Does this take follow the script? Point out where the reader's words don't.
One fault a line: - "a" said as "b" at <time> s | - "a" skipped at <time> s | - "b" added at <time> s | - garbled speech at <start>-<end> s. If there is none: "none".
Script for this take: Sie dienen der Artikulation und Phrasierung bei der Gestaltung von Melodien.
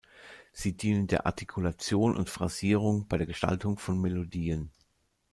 none